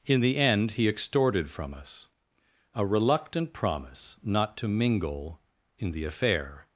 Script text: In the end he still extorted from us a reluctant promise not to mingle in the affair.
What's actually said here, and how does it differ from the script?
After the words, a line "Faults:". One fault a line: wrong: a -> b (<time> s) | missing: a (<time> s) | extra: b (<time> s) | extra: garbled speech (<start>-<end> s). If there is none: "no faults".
In the end he extorted from us a reluctant promise not to mingle in the affair.
Faults:
missing: still (0.9 s)